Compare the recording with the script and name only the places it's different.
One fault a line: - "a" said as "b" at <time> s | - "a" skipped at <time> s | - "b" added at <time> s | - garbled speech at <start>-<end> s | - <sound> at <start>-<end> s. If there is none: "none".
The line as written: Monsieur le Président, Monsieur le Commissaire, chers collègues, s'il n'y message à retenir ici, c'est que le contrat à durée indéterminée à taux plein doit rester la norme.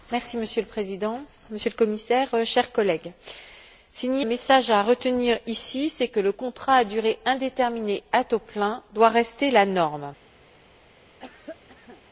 - cough at 11.2-12.0 s